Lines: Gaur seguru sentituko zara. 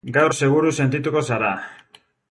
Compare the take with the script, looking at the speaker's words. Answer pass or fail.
pass